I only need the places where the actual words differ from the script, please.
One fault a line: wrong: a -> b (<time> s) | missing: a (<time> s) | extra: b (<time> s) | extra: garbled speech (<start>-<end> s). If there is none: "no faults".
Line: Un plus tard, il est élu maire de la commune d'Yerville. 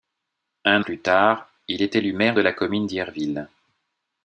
no faults